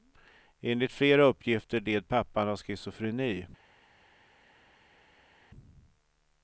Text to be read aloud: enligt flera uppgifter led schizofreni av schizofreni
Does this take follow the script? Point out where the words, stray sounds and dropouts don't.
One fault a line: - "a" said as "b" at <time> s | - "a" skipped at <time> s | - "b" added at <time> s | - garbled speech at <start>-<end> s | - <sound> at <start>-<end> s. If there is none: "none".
- "schizofreni" said as "pappan" at 2.1 s